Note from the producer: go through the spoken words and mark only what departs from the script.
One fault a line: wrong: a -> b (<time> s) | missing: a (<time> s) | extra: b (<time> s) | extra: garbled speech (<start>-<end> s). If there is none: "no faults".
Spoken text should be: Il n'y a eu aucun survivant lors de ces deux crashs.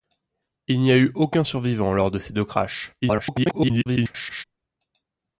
extra: garbled speech (3.0-4.4 s)